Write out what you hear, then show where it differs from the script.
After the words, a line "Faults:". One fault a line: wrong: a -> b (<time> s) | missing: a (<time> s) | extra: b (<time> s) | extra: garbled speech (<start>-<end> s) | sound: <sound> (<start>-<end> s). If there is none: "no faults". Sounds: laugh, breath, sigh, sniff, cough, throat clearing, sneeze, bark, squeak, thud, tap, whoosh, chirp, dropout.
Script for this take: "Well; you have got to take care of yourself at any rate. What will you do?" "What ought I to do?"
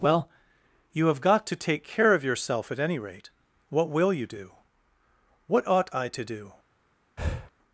"Well; you have got to take care of yourself at any rate. What will you do?" "What ought I to do?"
Faults:
sound: breath (7.2-7.5 s)